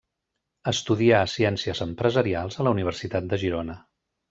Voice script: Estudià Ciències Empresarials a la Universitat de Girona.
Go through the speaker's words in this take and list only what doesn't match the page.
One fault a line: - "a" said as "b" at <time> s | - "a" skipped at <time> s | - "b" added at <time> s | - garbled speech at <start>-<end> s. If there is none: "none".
none